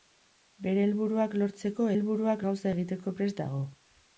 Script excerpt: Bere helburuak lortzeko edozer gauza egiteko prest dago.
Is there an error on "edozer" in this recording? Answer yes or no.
yes